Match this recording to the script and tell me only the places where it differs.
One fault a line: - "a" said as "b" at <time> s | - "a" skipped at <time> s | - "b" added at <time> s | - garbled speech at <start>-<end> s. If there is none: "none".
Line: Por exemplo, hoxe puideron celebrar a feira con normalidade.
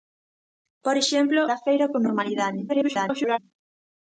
- "hoxe puideron celebrar" skipped at 1.4 s
- garbled speech at 2.7-3.4 s